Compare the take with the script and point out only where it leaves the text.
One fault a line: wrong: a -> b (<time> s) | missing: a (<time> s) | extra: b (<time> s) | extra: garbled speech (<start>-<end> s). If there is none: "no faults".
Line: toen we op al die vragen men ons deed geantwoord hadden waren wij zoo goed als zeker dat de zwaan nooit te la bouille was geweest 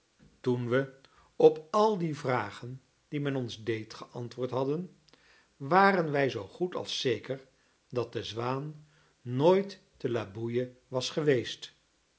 extra: die (3.1 s)